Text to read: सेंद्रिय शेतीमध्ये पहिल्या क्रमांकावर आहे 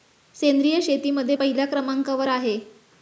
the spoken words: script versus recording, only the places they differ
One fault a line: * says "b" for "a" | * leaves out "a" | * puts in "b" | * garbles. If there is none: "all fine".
all fine